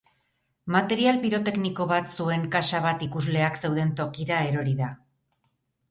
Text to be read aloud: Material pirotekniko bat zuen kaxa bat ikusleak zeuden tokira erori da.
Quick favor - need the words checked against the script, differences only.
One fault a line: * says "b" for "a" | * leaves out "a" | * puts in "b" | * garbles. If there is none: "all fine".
all fine